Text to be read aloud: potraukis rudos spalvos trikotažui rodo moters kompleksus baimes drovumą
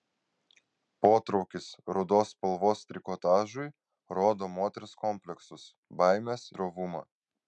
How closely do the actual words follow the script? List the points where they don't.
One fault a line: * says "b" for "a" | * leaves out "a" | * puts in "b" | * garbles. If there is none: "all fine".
all fine